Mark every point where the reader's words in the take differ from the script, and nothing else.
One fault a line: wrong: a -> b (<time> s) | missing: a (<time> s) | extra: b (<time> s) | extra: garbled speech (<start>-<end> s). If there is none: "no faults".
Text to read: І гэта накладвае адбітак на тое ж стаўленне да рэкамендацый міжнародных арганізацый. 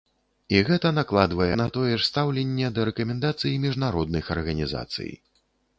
missing: адбітак (1.5 s)